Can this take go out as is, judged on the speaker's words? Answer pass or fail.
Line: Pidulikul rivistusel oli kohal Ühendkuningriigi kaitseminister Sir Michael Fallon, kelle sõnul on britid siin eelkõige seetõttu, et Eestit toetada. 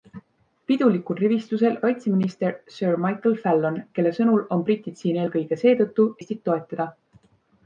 fail